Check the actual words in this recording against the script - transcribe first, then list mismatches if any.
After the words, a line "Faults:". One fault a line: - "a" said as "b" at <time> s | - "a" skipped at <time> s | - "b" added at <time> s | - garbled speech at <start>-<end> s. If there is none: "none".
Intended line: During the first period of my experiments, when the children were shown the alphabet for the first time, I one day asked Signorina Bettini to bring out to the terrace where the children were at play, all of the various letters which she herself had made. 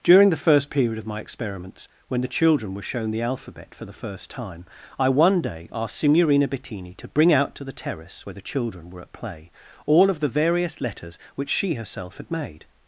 During the first period of my experiments, when the children were shown the alphabet for the first time, I one day asked Signorina Bettini to bring out to the terrace where the children were at play, all of the various letters which she herself had made.
Faults:
none